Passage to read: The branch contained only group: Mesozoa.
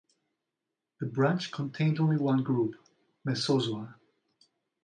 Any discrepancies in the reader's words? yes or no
yes